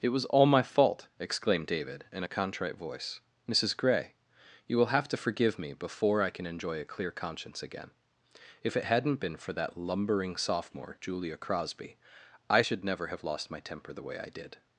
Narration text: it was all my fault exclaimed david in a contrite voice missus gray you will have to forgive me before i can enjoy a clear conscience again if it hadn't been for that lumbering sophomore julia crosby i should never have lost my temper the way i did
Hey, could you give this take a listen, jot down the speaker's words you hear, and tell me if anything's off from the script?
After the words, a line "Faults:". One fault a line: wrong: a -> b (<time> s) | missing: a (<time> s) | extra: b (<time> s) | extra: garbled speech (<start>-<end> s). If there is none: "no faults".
it was all my fault exclaimed david in a contrite voice missus gray you will have to forgive me before i can enjoy a clear conscience again if it hadn't been for that lumbering sophomore julia crosby i should never have lost my temper the way i did
Faults:
no faults